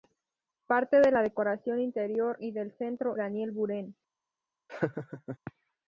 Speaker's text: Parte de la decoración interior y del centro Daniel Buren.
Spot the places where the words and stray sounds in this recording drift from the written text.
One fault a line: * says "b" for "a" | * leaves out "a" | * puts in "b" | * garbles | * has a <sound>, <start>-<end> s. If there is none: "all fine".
* has a laugh, 4.7-5.4 s